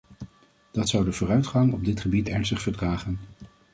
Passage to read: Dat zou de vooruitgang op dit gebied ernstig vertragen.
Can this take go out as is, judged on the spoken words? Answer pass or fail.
pass